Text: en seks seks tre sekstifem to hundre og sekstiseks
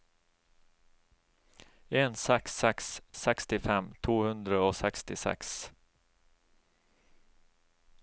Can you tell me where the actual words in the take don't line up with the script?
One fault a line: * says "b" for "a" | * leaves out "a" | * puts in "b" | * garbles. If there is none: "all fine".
* leaves out "tre"